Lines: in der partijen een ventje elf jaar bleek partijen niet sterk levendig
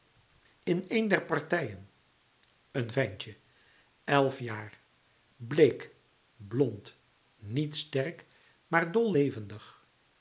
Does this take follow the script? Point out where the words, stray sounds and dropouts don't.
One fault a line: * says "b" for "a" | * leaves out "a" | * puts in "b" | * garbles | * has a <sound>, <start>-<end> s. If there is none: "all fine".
* puts in "een"
* says "blond" for "partijen"
* puts in "maar dol"